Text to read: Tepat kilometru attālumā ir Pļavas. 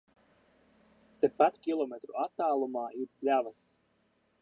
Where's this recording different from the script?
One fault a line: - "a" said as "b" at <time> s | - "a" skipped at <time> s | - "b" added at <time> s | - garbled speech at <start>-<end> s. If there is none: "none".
none